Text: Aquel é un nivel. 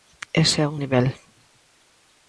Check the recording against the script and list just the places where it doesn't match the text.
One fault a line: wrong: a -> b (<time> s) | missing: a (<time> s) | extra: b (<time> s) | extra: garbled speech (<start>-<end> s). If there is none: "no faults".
wrong: Aquel -> Ese (0.4 s)